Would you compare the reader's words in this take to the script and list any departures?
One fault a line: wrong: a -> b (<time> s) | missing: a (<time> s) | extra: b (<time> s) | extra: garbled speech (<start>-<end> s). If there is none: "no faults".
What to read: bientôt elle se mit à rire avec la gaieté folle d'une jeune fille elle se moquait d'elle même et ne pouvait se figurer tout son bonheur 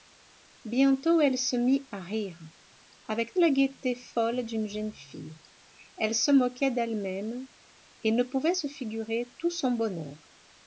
no faults